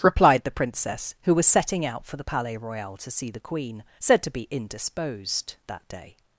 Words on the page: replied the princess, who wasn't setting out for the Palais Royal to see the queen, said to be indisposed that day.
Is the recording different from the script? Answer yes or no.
yes